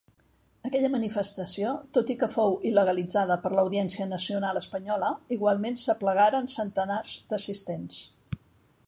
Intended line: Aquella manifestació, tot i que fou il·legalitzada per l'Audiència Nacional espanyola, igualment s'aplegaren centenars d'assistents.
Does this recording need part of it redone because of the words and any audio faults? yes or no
no